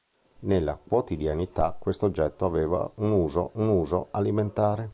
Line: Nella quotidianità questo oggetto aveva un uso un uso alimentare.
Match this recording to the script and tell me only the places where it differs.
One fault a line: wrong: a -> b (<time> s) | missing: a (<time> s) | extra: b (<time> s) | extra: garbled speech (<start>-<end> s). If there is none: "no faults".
no faults